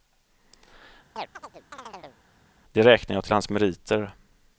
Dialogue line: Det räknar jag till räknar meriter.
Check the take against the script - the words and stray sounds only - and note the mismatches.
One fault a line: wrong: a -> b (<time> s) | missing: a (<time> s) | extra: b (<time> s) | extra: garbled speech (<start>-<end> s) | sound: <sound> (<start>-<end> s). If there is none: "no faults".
sound: chirp (1.2-2.2 s)
wrong: räknar -> hans (3.3 s)